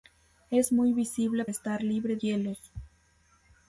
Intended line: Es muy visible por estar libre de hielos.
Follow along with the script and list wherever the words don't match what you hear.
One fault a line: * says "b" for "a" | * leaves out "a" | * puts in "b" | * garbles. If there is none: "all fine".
* leaves out "por"
* leaves out "de"